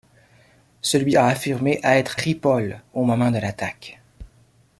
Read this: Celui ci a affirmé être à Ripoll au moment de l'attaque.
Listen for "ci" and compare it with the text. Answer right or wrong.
wrong